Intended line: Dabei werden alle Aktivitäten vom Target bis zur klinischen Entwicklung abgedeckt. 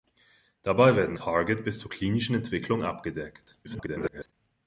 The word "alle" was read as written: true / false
false